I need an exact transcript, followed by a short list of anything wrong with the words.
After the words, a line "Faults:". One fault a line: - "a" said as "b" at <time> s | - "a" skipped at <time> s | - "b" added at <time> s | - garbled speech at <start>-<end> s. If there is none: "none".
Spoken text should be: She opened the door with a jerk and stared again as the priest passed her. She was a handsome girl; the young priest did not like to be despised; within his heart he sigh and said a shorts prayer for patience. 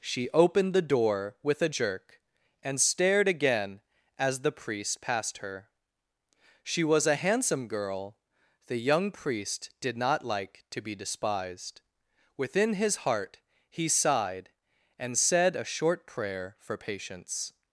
She opened the door with a jerk and stared again as the priest passed her. She was a handsome girl; the young priest did not like to be despised; within his heart he sighed and said a short prayer for patience.
Faults:
- "sigh" said as "sighed" at 13.9 s
- "shorts" said as "short" at 15.6 s